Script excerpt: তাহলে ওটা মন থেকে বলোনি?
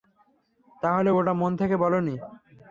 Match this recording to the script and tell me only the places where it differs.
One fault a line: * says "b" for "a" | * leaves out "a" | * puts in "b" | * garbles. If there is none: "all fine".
all fine